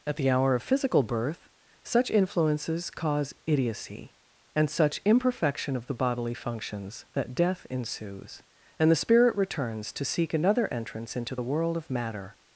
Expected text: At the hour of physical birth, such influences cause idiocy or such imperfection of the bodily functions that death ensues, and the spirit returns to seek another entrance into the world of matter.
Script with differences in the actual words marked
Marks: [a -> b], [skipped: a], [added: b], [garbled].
At the hour of physical birth, such influences cause idiocy [or -> and] such imperfection of the bodily functions that death ensues, and the spirit returns to seek another entrance into the world of matter.